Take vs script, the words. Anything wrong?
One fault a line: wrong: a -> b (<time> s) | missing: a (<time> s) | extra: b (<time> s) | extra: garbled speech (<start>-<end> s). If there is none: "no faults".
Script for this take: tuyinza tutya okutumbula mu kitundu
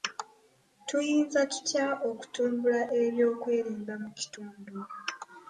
extra: eby'okwerinda (3.0 s)